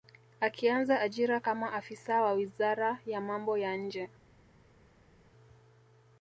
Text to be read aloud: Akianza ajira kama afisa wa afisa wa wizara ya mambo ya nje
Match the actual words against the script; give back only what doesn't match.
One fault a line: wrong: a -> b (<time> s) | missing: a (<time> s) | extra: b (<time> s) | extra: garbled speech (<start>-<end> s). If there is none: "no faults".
missing: afisa wa (2.3 s)